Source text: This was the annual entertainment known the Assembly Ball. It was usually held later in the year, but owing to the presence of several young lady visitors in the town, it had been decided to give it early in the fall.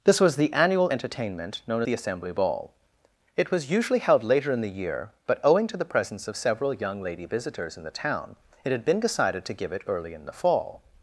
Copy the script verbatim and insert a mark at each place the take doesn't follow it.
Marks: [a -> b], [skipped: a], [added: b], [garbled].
This was the annual entertainment known the Assembly Ball. It was usually held later in the year, but owing to the presence of several young lady visitors in the town, it had been decided to give it early in the fall.